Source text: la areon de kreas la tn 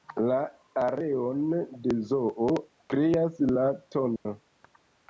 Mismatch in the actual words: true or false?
true